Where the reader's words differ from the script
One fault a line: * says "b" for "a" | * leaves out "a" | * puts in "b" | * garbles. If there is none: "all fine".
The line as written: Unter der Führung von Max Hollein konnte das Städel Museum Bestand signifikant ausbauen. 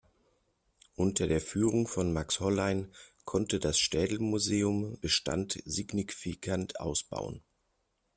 all fine